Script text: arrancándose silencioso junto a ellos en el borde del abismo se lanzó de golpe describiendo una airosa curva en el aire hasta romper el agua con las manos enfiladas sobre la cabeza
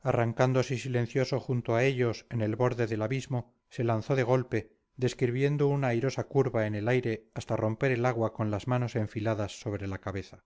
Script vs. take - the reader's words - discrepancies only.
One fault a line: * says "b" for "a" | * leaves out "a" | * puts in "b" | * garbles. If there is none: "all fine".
all fine